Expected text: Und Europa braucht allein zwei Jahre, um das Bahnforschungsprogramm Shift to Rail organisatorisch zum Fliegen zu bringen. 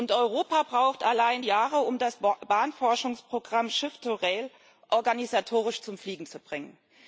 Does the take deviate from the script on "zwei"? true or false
true